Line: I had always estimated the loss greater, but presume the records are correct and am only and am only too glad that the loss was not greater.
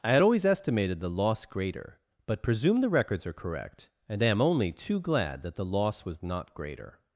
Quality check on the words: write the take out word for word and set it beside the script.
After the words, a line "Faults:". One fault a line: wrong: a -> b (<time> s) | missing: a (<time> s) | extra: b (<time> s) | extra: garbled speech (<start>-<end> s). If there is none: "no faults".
I had always estimated the loss greater, but presume the records are correct and am only too glad that the loss was not greater.
Faults:
missing: and am only (4.7 s)